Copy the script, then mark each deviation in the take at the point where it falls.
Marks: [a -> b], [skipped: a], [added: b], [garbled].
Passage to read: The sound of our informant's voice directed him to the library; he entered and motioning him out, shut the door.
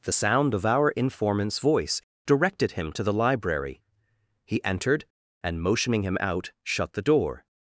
The sound of our informant's voice directed him to the library; he entered and motioning him out, shut the door.